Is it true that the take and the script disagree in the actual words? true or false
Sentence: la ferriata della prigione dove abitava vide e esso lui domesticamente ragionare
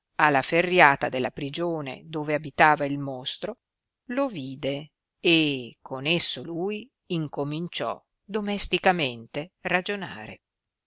true